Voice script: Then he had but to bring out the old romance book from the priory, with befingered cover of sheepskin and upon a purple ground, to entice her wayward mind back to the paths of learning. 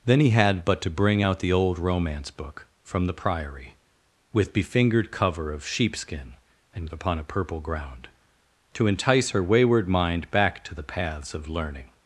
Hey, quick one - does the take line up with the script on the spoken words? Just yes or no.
yes